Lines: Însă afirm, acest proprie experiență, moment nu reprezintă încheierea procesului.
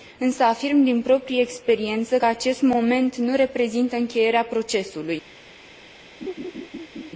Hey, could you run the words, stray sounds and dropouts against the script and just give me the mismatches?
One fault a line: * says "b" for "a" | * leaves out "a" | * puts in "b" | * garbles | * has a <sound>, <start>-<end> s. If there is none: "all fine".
* says "din" for "acest"
* puts in "că acest"
* has a laugh, 6.2-7.1 s